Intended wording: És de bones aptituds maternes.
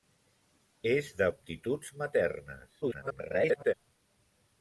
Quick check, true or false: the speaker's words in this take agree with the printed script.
false